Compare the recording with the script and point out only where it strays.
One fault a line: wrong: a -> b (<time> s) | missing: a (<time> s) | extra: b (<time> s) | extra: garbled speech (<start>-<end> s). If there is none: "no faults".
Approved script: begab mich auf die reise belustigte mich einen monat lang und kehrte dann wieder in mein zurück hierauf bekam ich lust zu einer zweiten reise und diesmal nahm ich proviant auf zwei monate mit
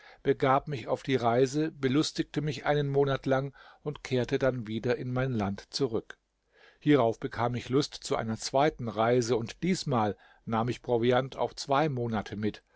extra: land (5.3 s)